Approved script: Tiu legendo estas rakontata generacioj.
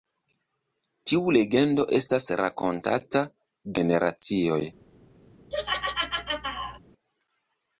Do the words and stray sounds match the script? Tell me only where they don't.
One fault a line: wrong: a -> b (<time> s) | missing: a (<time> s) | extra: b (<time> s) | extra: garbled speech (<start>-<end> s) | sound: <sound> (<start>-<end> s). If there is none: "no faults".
sound: laugh (5.5-6.8 s)